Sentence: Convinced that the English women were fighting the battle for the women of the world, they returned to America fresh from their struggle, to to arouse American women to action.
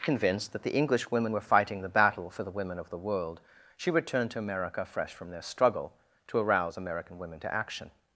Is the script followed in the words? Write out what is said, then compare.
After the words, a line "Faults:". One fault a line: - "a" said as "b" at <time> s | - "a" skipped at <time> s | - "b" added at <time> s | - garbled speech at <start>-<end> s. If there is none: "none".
Convinced that the English women were fighting the battle for the women of the world, she returned to America fresh from their struggle, to arouse American women to action.
Faults:
- "they" said as "she" at 3.8 s
- "to" skipped at 6.4 s